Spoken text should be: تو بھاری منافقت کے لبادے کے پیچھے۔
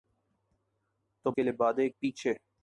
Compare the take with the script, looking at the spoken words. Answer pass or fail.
fail